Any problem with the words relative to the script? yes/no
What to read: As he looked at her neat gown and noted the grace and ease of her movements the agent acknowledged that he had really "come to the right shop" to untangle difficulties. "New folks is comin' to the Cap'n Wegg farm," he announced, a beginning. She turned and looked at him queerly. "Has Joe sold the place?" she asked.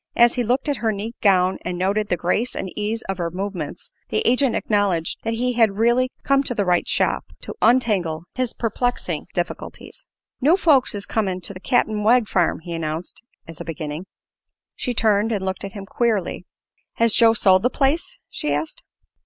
yes